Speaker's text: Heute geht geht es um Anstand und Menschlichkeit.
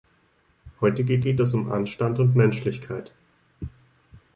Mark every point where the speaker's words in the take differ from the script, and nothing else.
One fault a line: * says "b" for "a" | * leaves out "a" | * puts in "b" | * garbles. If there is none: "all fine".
all fine